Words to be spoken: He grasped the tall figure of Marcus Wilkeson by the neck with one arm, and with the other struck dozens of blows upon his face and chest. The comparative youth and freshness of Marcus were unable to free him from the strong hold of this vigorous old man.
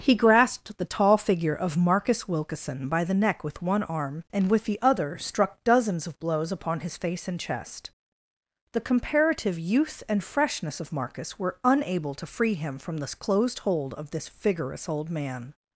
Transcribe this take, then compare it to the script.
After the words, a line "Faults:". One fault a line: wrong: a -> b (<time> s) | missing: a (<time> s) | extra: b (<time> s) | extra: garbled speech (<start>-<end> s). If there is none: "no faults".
He grasped the tall figure of Marcus Wilkeson by the neck with one arm, and with the other struck dozens of blows upon his face and chest. The comparative youth and freshness of Marcus were unable to free him from the closed hold of this vigorous old man.
Faults:
wrong: strong -> closed (13.2 s)